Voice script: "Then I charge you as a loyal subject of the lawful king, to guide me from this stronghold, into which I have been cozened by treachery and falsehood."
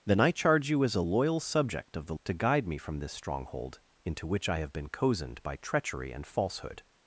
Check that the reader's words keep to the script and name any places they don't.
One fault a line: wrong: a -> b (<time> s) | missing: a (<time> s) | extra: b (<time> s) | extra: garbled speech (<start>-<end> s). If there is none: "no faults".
missing: lawful king (2.1 s)